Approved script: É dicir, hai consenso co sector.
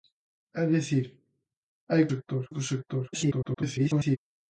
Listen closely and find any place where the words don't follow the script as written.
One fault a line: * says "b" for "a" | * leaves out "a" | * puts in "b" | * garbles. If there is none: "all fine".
* says "sector" for "consenso"
* garbles